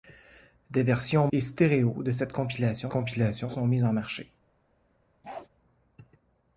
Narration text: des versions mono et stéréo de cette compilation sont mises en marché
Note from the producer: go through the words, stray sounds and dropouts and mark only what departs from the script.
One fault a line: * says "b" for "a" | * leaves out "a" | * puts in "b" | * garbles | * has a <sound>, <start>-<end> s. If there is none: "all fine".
* leaves out "mono"
* puts in "compilation"
* has a bark, 5.2-5.5 s